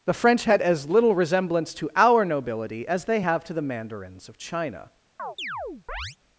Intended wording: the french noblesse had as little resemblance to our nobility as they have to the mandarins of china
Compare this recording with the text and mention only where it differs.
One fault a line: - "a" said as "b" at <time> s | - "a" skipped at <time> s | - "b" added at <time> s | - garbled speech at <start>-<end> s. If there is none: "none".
- "noblesse" skipped at 0.4 s